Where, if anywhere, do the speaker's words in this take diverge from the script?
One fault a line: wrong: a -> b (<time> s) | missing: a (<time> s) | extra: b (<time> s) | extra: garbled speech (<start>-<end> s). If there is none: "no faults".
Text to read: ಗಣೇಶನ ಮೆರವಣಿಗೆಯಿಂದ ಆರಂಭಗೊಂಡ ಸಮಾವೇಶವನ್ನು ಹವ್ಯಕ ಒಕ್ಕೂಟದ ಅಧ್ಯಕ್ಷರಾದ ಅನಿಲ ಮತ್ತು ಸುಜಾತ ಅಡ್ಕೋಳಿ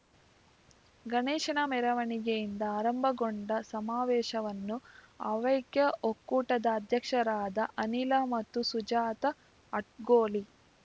no faults